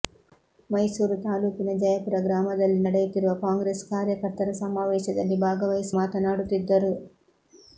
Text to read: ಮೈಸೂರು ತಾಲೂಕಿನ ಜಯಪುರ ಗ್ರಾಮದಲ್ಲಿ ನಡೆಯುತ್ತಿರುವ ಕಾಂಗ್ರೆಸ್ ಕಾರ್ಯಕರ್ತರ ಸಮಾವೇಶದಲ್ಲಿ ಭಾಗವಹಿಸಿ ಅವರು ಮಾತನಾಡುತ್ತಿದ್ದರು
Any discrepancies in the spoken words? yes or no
yes